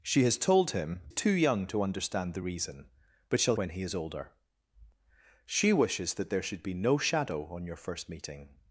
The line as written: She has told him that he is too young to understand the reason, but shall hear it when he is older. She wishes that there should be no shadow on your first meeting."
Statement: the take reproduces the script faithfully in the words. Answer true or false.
false